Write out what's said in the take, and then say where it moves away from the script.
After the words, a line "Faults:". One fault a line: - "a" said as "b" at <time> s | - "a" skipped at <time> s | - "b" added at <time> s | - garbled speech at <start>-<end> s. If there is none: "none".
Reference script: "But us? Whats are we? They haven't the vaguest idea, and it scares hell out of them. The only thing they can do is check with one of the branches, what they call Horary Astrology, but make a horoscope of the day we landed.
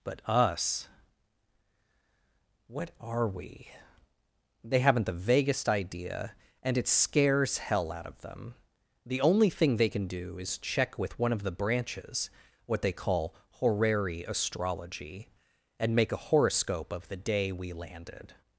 "But us? What are we? They haven't the vaguest idea, and it scares hell out of them. The only thing they can do is check with one of the branches, what they call Horary Astrology, and make a horoscope of the day we landed.
Faults:
- "Whats" said as "What" at 2.7 s
- "but" said as "and" at 15.8 s